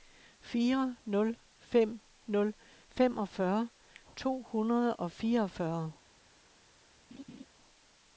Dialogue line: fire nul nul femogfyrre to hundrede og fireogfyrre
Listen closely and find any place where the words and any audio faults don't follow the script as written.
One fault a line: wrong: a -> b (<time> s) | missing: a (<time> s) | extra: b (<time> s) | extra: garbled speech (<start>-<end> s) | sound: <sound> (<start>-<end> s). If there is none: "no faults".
extra: fem (1.6 s)
sound: laugh (7.1-7.5 s)